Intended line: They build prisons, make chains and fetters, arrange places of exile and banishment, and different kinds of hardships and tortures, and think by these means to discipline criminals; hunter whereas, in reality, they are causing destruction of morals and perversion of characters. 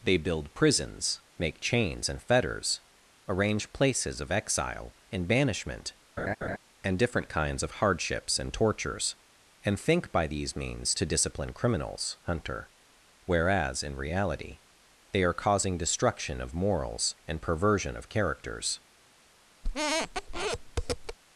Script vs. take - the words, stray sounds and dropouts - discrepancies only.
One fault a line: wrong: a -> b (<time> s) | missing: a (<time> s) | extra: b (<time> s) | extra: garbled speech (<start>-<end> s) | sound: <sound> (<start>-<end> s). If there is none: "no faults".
sound: laugh (6.2-6.6 s)
sound: squeak (19.6-21.2 s)